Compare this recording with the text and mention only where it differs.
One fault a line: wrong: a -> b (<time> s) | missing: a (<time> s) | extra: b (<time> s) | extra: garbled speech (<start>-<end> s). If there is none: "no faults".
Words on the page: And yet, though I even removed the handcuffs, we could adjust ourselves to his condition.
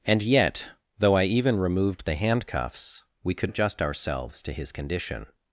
no faults